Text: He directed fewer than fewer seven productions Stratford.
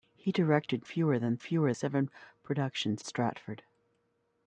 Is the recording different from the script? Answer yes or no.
no